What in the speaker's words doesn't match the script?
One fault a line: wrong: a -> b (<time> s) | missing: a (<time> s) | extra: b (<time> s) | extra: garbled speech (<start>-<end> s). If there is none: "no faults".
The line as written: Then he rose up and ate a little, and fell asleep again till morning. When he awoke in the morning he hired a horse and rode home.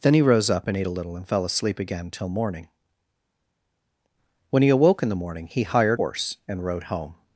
missing: a (6.0 s)